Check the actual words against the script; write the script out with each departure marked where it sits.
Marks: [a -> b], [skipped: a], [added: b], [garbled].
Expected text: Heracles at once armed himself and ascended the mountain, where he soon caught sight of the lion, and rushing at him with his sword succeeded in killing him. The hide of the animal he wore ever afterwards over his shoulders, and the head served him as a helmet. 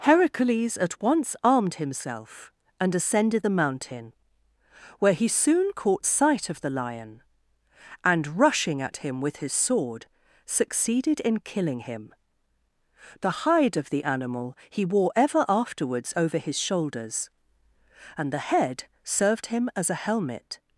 Heracles at once armed himself and ascended the mountain, where he soon caught sight of the lion, and rushing at him with his sword succeeded in killing him. The hide of the animal he wore ever afterwards over his shoulders, and the head served him as a helmet.